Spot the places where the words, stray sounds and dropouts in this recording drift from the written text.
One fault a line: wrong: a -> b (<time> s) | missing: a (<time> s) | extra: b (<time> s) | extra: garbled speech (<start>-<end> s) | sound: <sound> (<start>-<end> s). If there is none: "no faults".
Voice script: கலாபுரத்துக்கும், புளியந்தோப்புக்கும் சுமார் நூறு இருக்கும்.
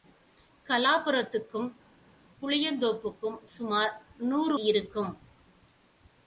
no faults